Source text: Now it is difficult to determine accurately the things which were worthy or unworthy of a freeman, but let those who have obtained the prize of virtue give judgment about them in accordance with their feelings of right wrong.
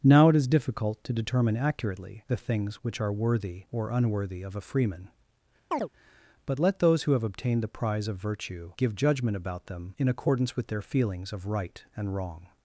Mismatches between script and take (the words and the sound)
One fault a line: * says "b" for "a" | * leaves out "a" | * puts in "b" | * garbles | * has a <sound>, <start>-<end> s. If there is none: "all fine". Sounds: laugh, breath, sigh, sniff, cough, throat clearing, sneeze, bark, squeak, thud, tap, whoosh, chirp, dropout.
* says "are" for "were"
* has a chirp, 5.7-5.9 s
* puts in "and"